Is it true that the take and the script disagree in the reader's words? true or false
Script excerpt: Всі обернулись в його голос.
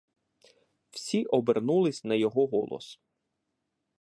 true